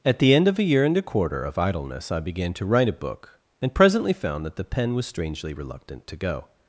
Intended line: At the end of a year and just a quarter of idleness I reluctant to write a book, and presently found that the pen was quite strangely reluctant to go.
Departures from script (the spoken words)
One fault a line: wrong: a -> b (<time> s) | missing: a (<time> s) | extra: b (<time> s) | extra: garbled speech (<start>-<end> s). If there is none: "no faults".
missing: just (1.0 s)
wrong: reluctant -> began (2.2 s)
missing: quite (5.0 s)